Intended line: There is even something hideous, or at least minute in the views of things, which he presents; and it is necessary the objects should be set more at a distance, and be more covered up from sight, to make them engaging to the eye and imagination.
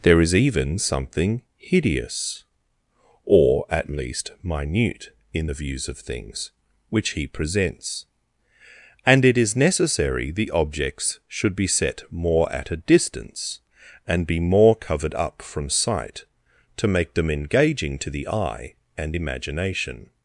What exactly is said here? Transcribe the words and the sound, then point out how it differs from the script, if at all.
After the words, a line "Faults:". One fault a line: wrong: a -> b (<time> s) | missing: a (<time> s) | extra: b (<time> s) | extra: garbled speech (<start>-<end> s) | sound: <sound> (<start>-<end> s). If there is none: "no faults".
There is even something hideous, or at least minute in the views of things, which he presents; and it is necessary the objects should be set more at a distance, and be more covered up from sight, to make them engaging to the eye and imagination.
Faults:
no faults